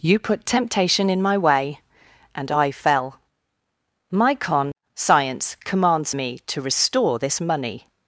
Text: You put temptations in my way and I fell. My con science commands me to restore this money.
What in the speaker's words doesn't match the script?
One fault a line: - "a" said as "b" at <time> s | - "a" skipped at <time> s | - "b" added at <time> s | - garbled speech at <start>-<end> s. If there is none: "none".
- "temptations" said as "temptation" at 0.5 s